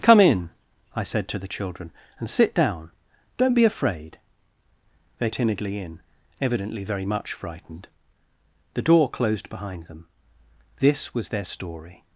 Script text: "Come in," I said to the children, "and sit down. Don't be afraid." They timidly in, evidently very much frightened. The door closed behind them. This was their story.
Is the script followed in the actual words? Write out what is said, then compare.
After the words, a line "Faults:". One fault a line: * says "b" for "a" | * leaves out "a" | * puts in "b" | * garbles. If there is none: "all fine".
"Come in," I said to the children, "and sit down. Don't be afraid." They timidly in, evidently very much frightened. The door closed behind them. This was their story.
Faults:
all fine